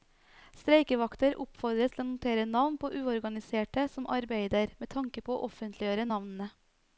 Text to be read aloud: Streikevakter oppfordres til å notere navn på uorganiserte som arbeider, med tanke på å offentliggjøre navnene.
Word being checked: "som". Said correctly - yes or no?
yes